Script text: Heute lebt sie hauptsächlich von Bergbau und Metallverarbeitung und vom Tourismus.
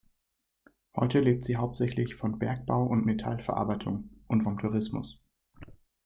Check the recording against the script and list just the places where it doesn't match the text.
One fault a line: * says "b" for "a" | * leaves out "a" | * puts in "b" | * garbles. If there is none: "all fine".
all fine